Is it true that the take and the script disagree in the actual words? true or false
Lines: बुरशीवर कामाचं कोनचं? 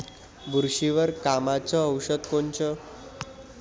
true